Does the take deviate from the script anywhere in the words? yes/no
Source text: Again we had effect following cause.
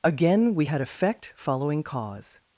no